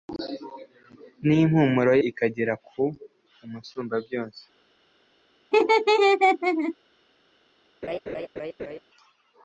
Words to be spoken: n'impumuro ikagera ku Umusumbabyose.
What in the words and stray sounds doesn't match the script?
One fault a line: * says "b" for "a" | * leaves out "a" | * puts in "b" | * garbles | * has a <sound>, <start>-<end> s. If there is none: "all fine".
* has a laugh, 5.5-6.8 s
* has a laugh, 7.8-8.8 s